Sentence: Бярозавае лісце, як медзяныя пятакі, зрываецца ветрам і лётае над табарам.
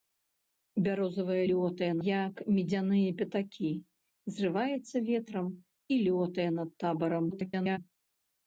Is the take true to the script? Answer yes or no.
no